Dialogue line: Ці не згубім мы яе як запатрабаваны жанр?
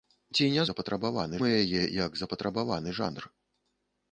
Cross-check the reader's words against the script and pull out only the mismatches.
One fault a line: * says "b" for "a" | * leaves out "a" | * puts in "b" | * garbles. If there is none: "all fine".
* says "запатрабаваны" for "згубім"